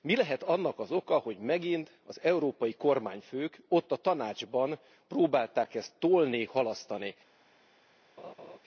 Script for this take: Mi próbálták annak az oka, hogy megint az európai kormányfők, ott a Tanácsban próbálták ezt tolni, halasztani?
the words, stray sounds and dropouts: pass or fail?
fail